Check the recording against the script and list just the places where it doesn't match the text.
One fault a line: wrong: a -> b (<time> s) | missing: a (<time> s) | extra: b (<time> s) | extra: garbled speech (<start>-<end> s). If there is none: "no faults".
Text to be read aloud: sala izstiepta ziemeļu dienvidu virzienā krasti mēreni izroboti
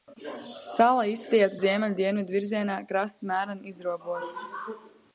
no faults